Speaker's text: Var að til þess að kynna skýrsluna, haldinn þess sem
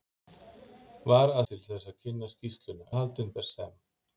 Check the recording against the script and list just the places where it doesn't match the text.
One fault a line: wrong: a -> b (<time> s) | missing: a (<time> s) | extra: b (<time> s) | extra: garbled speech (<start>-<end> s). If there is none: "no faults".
no faults